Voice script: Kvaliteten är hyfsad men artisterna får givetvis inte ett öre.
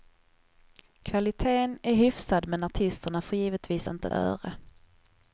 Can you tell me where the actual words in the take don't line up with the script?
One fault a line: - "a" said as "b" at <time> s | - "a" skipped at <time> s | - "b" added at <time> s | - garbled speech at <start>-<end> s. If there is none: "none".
- "ett" skipped at 4.1 s